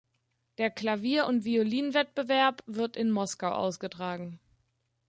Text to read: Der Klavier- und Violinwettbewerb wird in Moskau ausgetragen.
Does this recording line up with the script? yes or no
yes